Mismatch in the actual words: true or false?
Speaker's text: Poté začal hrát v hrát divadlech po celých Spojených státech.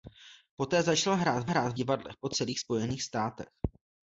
false